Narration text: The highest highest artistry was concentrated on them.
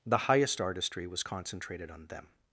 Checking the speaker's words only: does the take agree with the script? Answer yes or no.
no